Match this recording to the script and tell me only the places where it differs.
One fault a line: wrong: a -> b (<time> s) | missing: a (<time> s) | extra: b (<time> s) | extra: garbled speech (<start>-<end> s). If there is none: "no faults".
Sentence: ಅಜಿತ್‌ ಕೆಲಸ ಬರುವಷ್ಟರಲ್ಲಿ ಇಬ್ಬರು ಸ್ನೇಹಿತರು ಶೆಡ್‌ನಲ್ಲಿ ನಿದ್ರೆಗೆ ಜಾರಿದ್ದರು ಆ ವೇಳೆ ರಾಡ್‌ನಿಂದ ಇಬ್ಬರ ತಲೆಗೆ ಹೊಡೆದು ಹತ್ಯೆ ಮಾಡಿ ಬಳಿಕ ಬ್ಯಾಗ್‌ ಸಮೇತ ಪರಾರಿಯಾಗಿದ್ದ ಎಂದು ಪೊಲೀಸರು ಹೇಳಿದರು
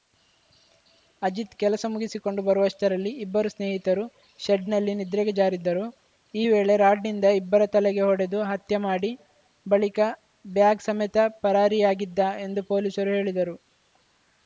extra: ಮುಗಿಸಿಕೊಂಡು (1.9 s)
wrong: ಆ -> ಈ (6.3 s)